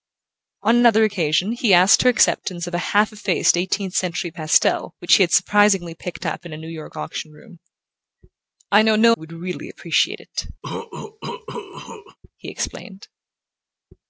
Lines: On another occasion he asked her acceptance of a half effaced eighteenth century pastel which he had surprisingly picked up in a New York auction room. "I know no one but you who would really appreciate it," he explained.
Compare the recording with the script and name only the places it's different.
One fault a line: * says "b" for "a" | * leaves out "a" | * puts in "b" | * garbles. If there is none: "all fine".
* leaves out "one but you"